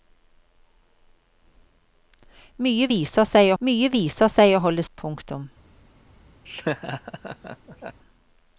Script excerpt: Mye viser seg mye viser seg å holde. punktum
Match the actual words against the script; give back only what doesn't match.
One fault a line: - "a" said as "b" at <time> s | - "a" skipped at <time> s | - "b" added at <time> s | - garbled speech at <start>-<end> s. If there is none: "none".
none